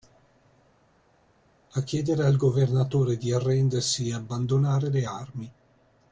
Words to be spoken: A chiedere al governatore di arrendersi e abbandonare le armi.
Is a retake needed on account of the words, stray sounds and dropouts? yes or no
no